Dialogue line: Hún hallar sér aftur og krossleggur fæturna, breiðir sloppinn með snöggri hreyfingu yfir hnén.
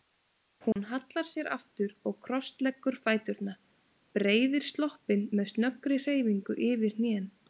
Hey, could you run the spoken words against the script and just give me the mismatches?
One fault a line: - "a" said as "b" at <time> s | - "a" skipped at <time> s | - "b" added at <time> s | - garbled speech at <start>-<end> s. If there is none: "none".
none